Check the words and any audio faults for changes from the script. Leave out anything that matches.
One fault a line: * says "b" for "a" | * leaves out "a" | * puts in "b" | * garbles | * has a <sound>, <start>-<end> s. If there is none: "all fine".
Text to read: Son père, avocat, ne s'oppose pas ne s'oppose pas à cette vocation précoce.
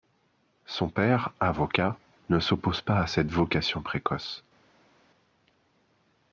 * leaves out "ne s'oppose pas"